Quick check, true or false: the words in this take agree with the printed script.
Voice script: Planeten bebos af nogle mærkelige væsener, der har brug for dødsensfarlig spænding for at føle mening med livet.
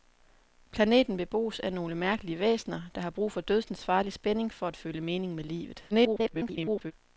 false